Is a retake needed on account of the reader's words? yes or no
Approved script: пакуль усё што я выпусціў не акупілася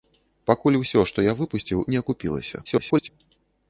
yes